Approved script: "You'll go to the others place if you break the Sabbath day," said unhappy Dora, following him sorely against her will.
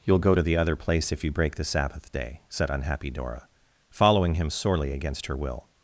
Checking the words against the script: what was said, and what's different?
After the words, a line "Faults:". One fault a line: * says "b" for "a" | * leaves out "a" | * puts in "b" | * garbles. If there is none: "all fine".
"You'll go to the other place if you break the Sabbath day," said unhappy Dora, following him sorely against her will.
Faults:
* says "other" for "others"